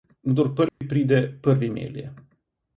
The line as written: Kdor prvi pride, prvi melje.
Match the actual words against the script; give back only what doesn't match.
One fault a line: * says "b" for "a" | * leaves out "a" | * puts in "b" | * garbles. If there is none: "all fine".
all fine